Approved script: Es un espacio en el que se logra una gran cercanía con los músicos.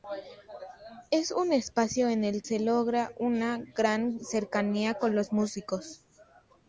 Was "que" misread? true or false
true